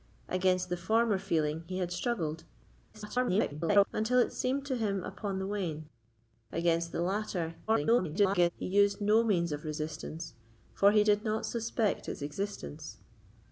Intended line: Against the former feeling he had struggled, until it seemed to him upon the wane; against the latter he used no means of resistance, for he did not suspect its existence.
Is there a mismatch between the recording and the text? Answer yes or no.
yes